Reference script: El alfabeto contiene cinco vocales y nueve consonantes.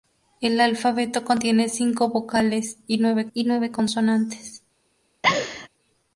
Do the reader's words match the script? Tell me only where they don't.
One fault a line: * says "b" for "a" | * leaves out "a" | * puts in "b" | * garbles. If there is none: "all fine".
* puts in "y nueve"